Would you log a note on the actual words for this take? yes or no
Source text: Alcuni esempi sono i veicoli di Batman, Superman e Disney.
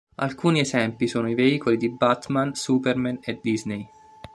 no